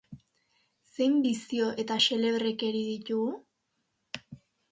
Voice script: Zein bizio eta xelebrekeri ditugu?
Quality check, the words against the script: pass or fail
pass